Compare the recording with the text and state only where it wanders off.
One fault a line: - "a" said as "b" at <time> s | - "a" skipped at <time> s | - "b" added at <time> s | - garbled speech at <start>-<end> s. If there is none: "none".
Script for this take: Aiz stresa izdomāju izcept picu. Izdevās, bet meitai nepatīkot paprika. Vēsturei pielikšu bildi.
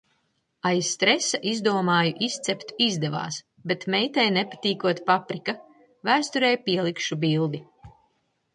- "picu" skipped at 2.7 s